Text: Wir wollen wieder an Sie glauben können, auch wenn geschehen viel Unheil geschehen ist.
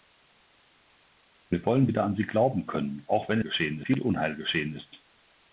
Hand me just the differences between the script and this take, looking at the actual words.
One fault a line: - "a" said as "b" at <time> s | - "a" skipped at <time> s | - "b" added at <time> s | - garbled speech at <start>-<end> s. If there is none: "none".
none